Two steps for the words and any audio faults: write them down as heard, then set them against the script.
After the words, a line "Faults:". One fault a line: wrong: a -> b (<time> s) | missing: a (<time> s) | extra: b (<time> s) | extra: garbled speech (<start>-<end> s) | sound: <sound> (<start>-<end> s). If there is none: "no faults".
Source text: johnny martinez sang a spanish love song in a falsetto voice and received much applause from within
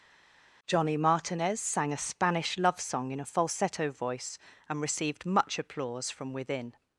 johnny martinez sang a spanish love song in a falsetto voice and received much applause from within
Faults:
no faults